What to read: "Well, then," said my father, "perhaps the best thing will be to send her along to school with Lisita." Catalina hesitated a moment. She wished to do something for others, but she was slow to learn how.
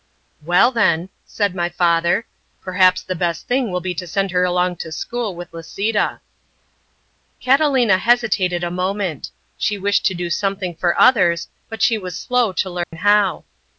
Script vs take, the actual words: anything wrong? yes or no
no